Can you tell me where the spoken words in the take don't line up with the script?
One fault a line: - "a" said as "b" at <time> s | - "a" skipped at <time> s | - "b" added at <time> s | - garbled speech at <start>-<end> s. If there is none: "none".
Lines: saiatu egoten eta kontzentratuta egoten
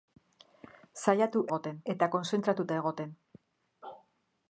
none